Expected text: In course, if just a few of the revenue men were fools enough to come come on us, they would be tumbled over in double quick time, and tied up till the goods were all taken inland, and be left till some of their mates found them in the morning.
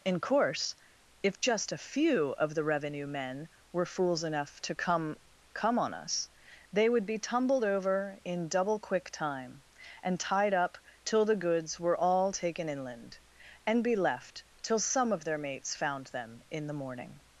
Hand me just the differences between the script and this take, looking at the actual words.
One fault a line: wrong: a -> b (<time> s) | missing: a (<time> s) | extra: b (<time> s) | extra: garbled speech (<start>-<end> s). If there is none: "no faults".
no faults